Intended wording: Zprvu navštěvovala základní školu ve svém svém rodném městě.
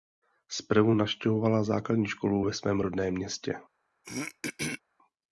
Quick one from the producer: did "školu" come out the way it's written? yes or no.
yes